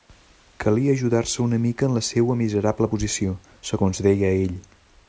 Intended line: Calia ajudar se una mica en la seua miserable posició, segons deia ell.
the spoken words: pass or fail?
pass